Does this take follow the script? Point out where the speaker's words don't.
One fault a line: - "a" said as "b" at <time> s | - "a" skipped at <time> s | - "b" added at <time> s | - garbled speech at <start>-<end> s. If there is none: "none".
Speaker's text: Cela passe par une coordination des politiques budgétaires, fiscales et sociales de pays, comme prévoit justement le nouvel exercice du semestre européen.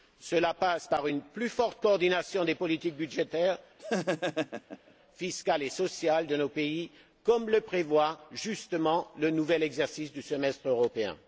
- "plus forte" added at 1.2 s
- "nos" added at 6.4 s
- "le" added at 7.5 s